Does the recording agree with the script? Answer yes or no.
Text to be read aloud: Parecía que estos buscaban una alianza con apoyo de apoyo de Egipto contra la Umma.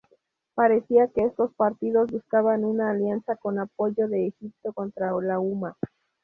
no